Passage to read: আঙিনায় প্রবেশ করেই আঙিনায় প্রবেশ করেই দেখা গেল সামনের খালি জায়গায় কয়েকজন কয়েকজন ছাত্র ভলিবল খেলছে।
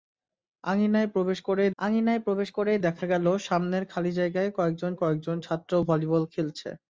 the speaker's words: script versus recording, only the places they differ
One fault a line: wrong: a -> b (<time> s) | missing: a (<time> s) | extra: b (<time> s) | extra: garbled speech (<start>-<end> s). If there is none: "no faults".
no faults